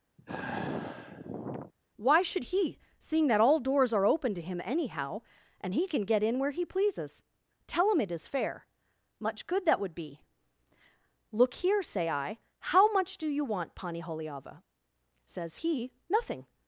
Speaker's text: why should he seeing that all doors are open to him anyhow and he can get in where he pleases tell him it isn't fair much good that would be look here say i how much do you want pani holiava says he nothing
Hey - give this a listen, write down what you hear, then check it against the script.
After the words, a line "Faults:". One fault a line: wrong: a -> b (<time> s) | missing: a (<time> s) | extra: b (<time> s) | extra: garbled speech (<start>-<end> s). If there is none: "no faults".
why should he seeing that all doors are open to him anyhow and he can get in where he pleases tell him it is fair much good that would be look here say i how much do you want pani holiava says he nothing
Faults:
wrong: isn't -> is (8.1 s)